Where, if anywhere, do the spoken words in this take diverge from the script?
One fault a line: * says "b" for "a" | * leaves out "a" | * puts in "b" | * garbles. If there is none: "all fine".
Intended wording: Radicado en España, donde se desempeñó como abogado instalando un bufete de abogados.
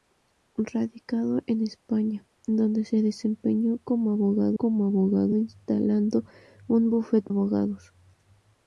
* puts in "como abogado"
* leaves out "de"